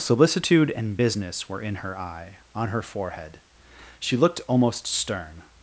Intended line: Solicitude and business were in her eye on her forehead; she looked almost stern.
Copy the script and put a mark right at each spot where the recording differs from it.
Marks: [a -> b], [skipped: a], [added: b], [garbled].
Solicitude and business were in her eye on her forehead; she looked almost stern.